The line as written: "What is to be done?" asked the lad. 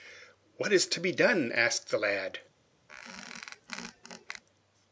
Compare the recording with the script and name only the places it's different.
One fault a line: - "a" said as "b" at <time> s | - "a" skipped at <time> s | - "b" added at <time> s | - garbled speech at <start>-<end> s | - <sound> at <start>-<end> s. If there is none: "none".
- squeak at 2.9-4.4 s